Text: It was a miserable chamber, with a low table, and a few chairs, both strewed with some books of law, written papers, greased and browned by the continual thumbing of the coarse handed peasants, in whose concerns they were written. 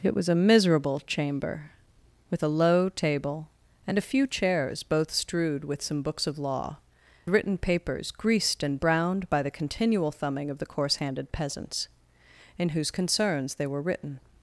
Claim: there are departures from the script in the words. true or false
false